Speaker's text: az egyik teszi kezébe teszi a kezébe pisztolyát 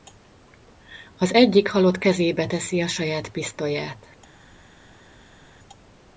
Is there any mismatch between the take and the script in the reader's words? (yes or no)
yes